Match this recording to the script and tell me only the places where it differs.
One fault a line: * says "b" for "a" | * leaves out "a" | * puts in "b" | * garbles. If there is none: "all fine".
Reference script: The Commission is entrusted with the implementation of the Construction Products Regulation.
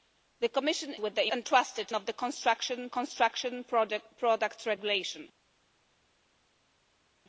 * leaves out "is entrusted"
* says "entrusted" for "implementation"
* puts in "Construction"